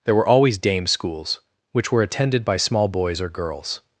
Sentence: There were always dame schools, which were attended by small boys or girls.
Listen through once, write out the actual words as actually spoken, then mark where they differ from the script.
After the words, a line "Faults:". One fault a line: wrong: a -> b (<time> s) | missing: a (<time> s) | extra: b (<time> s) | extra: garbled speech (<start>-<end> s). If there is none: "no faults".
There were always dame schools, which were attended by small boys or girls.
Faults:
no faults